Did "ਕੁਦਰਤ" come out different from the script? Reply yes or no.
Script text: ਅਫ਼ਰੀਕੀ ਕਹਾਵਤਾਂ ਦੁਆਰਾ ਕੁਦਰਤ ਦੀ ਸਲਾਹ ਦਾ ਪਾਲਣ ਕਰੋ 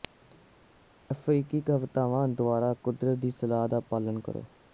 no